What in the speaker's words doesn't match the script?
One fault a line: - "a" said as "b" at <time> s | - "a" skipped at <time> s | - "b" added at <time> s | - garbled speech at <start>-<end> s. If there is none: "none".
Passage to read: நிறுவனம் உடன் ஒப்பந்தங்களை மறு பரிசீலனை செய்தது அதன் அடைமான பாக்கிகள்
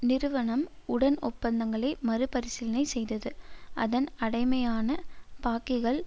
none